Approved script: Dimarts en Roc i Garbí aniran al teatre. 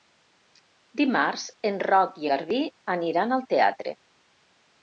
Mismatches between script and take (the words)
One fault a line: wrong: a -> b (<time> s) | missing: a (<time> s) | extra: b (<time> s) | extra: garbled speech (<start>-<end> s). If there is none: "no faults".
no faults